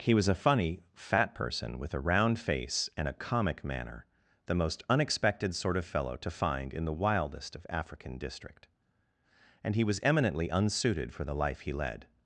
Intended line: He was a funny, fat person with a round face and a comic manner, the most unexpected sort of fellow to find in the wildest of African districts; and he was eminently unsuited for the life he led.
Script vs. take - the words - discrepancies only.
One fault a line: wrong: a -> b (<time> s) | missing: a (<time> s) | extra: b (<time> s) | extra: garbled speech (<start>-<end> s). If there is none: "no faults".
wrong: districts -> district (8.2 s)